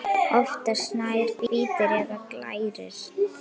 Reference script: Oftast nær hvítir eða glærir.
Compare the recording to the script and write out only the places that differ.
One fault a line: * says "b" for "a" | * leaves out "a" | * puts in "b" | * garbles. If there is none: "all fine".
all fine